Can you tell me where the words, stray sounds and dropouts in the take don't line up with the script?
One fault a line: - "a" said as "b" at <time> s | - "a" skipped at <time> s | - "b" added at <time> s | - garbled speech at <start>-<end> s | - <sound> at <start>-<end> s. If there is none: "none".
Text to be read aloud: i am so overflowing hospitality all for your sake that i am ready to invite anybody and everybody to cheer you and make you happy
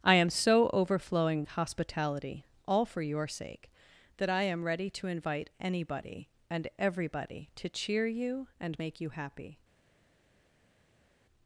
none